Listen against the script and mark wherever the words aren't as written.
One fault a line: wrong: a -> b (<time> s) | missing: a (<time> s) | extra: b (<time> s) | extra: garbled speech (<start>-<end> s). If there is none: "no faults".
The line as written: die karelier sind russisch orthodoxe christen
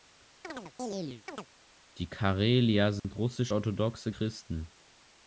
no faults